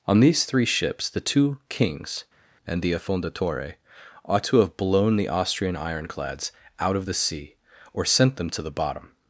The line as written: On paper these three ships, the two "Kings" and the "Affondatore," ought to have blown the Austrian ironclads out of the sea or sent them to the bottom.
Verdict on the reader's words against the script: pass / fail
fail